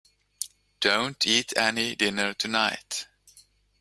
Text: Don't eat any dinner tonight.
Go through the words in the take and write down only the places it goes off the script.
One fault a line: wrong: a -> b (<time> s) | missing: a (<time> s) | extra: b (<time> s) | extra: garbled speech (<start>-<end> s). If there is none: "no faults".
no faults